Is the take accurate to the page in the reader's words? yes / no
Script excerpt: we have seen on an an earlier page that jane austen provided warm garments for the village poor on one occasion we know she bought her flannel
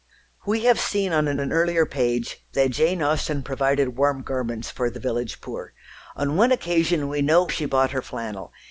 yes